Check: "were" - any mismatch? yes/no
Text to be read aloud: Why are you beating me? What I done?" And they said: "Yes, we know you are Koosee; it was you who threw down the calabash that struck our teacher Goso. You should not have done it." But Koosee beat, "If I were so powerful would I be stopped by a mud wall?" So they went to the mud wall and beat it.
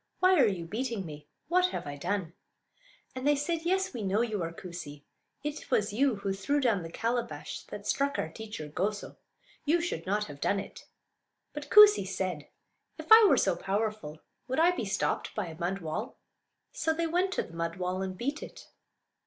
no